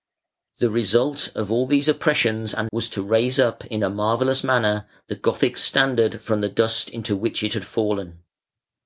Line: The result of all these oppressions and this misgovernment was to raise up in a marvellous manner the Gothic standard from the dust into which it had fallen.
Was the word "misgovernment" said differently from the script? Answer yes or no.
yes